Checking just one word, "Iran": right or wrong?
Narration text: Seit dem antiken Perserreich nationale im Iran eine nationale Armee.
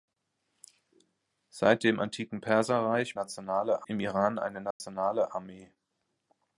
right